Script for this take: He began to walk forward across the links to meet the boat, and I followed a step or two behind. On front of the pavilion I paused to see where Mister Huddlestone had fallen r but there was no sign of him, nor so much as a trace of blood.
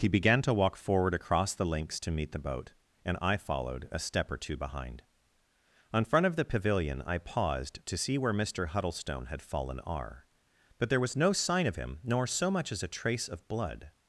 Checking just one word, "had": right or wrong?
right